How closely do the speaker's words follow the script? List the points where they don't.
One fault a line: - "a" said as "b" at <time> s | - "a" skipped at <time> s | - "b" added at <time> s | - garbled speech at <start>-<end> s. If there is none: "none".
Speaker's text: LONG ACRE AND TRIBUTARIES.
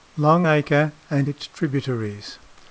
- "ITS" added at 1.3 s